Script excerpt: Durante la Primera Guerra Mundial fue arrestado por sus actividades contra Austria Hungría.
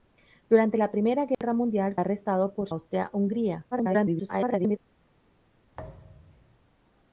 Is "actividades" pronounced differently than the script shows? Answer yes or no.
yes